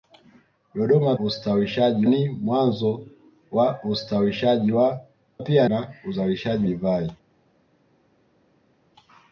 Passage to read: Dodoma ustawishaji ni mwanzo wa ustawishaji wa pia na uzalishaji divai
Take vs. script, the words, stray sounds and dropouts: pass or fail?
pass